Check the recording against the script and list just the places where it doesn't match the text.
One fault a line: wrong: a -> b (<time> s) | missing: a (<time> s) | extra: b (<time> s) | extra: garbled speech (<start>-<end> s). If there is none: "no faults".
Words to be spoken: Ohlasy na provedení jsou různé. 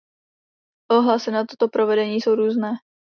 extra: toto (1.4 s)